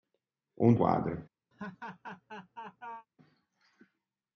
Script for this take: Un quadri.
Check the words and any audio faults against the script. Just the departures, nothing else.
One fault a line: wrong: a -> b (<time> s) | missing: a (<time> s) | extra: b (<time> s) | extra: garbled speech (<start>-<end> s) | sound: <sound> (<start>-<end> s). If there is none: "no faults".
sound: laugh (1.5-3.1 s)